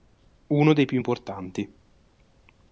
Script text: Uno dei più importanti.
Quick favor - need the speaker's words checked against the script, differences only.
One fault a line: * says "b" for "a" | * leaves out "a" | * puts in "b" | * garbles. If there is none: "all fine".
all fine